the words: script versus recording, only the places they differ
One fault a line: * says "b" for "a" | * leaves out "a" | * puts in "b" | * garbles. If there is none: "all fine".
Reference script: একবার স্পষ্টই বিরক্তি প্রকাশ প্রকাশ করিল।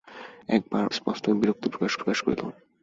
all fine